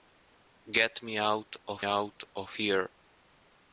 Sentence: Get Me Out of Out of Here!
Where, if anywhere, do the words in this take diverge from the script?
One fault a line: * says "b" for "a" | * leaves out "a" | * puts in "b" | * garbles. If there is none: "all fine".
all fine